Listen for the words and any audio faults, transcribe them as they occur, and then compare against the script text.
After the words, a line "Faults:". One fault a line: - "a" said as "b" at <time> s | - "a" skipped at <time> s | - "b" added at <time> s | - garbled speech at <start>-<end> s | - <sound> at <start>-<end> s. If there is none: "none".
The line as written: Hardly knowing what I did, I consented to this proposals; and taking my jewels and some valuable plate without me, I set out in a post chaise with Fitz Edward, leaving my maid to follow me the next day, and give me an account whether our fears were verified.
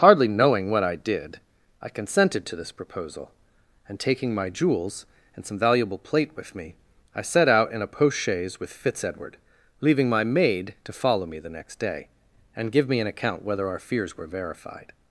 Hardly knowing what I did, I consented to this proposal; and taking my jewels and some valuable plate with me, I set out in a post chaise with Fitz Edward, leaving my maid to follow me the next day, and give me an account whether our fears were verified.
Faults:
- "proposals" said as "proposal" at 2.7 s
- "without" said as "with" at 6.3 s